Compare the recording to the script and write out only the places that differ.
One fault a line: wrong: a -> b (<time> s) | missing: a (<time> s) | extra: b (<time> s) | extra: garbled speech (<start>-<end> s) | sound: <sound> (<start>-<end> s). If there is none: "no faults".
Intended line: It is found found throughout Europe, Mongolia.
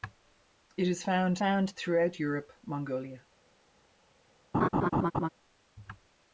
sound: laugh (4.5-5.3 s)